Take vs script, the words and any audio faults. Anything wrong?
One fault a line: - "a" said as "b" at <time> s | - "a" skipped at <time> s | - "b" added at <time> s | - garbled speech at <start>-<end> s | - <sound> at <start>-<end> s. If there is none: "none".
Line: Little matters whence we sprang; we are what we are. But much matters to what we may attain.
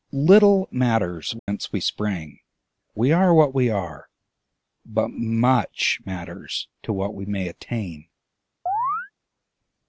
- dropout at 1.4-1.5 s
- chirp at 8.7-9.1 s